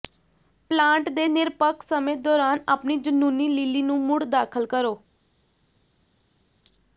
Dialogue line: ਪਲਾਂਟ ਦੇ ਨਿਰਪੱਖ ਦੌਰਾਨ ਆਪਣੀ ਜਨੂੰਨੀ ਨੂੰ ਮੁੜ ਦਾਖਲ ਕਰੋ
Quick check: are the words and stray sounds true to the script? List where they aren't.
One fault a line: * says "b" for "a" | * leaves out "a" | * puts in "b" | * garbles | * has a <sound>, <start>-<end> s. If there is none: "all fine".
* puts in "ਸਮੇਂ"
* puts in "ਲਿਲੀ"